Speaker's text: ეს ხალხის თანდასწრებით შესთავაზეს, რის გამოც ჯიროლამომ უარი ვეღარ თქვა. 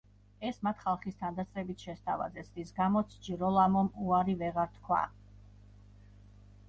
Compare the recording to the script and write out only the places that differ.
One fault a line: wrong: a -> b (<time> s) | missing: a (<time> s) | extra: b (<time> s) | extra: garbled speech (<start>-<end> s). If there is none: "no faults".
extra: მათ (0.7 s)